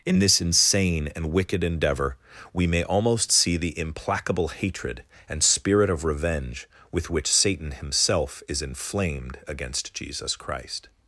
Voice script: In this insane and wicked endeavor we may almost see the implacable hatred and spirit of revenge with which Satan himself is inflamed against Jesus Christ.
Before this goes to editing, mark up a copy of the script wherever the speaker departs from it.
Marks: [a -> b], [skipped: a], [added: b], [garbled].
In this insane and wicked endeavor we may almost see the implacable hatred and spirit of revenge with which Satan himself is inflamed against Jesus Christ.